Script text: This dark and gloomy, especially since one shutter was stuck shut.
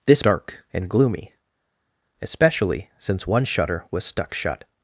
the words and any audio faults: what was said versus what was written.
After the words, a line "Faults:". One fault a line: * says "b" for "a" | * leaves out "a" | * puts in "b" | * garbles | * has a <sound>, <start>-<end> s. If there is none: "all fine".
This dark and gloomy, especially since one shutter was stuck shut.
Faults:
all fine